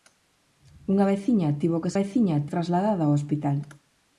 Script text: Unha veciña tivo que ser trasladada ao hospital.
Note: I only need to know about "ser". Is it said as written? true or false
false